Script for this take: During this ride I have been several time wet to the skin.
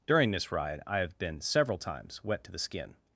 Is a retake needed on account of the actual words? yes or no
yes